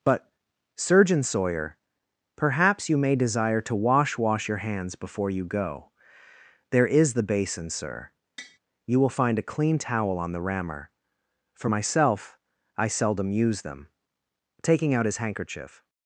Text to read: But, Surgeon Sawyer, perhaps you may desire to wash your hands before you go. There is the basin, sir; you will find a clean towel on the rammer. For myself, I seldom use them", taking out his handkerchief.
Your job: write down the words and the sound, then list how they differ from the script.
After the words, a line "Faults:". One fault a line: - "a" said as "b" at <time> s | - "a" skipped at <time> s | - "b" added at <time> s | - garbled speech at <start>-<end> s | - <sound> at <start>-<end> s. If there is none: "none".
But, Surgeon Sawyer, perhaps you may desire to wash wash your hands before you go. There is the basin, sir; you will find a clean towel on the rammer. For myself, I seldom use them", taking out his handkerchief.
Faults:
- "wash" added at 4.2 s
- tap at 8.4-8.6 s